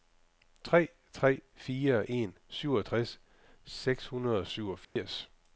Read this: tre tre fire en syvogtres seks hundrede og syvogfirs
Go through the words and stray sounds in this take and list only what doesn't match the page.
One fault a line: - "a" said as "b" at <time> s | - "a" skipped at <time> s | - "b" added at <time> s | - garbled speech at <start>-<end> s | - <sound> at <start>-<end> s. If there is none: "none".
- dropout at 4.8-5.0 s